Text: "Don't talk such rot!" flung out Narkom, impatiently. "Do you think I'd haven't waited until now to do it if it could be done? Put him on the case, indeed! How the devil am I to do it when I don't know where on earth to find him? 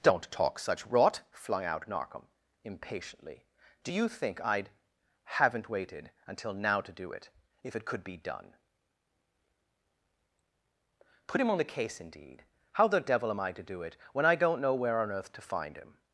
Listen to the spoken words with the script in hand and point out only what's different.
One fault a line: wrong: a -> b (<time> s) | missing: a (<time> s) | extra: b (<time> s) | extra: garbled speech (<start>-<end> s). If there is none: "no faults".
no faults